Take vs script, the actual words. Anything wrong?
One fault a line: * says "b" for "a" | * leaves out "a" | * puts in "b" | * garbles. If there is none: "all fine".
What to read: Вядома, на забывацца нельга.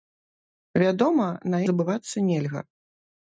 all fine